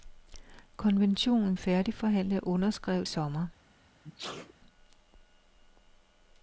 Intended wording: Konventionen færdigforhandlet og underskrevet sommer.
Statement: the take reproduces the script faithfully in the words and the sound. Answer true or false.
false